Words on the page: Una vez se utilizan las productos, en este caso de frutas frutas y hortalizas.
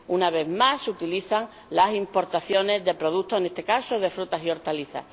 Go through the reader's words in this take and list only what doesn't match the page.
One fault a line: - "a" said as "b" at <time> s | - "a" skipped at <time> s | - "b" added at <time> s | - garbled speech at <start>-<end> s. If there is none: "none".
- "más" added at 0.5 s
- "importaciones de" added at 1.9 s
- "frutas" skipped at 4.4 s